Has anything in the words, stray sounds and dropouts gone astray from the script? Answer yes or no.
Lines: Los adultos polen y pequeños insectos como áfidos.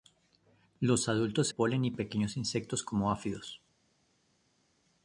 no